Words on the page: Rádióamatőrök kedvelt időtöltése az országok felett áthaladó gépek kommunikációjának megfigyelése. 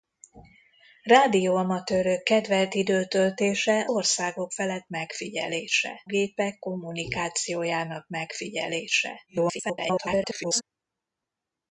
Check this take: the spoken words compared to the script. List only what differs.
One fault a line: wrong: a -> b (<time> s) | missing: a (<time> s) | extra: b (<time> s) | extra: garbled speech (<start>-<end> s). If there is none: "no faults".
missing: az (3.9 s)
wrong: áthaladó -> megfigyelése (4.9 s)
extra: garbled speech (9.3-10.6 s)